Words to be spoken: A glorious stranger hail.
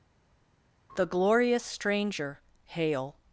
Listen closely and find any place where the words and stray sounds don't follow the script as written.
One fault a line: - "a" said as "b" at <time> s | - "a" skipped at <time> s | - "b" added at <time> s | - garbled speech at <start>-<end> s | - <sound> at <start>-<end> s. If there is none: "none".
- "A" said as "The" at 1.0 s